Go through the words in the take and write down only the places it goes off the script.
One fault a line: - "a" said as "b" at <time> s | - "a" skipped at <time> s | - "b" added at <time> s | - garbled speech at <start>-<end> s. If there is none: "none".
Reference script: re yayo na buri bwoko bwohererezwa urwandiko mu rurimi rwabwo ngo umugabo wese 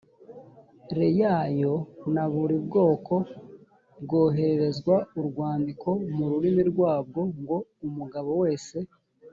none